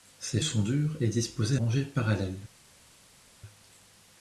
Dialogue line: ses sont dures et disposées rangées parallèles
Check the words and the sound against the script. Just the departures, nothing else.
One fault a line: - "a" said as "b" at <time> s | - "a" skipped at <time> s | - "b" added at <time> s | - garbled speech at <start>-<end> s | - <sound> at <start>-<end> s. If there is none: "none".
none